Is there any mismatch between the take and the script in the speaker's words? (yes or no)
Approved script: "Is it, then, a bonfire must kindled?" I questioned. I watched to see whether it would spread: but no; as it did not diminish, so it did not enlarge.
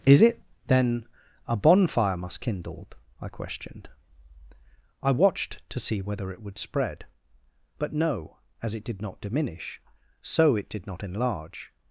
no